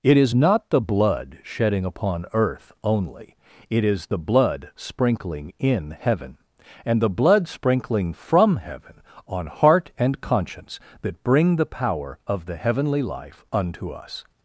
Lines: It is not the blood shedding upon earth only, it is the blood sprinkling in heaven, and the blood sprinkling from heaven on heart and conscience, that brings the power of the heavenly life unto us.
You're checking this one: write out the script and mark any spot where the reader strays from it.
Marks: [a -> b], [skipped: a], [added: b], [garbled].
It is not the blood shedding upon earth only, it is the blood sprinkling in heaven, and the blood sprinkling from heaven on heart and conscience, that [brings -> bring] the power of the heavenly life unto us.